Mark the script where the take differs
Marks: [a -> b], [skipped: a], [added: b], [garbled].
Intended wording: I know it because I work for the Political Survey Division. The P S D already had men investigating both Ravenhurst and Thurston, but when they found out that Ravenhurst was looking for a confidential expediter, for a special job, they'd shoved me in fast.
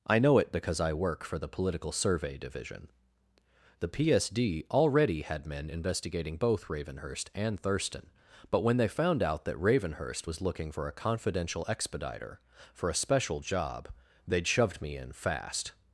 I know it because I work for the Political Survey Division. The P S D already had men investigating both Ravenhurst and Thurston, but when they found out that Ravenhurst was looking for a confidential expediter, for a special job, they'd shoved me in fast.